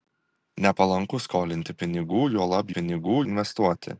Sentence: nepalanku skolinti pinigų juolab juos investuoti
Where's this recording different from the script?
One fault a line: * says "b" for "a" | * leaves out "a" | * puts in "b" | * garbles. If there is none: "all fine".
* says "pinigų" for "juos"